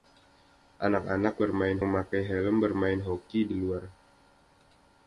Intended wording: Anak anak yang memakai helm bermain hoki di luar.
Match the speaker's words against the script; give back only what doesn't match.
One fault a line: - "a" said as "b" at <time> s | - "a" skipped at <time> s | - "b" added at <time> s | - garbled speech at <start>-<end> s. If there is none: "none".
- "yang" said as "bermain" at 1.4 s